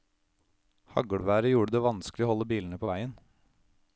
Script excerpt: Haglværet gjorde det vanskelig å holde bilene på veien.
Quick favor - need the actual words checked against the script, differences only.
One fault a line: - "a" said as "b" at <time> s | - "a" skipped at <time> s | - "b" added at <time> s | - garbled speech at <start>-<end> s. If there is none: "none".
none